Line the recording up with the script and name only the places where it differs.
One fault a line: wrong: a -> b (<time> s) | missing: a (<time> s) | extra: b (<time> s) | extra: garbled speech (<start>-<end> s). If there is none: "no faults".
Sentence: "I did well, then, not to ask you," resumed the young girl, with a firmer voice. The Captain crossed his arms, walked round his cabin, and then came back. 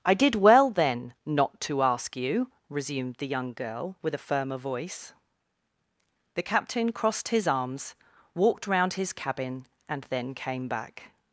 no faults